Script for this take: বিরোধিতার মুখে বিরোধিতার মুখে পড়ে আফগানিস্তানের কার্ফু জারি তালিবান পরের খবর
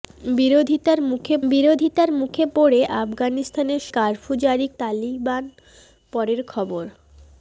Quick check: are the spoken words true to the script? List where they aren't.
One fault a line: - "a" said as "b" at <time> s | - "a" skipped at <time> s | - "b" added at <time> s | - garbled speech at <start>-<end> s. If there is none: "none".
none